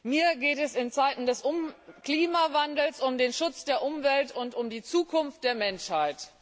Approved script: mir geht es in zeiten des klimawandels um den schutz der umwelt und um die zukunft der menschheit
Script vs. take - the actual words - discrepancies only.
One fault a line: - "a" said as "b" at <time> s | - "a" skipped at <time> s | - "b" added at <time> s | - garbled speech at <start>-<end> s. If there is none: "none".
none